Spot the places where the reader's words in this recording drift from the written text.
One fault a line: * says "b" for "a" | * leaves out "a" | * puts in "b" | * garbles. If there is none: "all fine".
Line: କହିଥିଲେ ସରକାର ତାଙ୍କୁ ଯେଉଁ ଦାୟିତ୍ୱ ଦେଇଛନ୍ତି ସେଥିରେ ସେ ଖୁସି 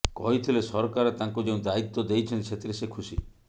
all fine